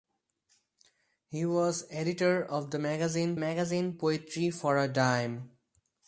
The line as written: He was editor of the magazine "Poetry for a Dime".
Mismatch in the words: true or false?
true